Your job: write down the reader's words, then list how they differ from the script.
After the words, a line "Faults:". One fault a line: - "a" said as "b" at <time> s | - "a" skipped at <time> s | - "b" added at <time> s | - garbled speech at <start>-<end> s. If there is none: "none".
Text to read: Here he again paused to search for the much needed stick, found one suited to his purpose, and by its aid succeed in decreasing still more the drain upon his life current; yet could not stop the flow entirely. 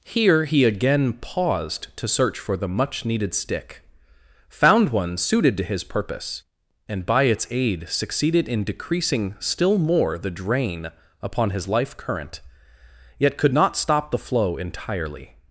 Here he again paused to search for the much needed stick, found one suited to his purpose, and by its aid succeeded in decreasing still more the drain upon his life current; yet could not stop the flow entirely.
Faults:
- "succeed" said as "succeeded" at 7.9 s